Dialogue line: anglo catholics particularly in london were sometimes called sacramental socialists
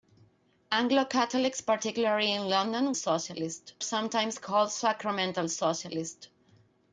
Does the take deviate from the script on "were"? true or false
true